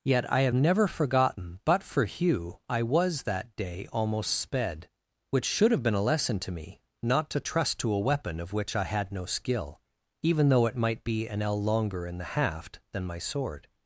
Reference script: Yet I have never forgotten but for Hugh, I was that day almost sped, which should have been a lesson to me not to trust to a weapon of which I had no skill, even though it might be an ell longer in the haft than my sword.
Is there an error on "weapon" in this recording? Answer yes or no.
no